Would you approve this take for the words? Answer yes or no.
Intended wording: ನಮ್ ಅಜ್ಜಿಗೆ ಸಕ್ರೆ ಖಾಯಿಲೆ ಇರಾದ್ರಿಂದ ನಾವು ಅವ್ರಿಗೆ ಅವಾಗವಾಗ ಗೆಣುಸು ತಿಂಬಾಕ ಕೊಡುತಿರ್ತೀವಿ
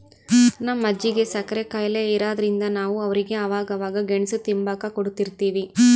yes